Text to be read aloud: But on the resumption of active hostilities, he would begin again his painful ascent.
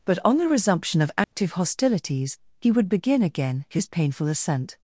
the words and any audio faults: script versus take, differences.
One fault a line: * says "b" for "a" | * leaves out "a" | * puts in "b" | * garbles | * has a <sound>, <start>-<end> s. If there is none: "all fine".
* has a dropout, 1.2-1.3 s